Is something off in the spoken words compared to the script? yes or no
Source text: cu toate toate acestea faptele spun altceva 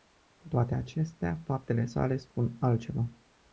yes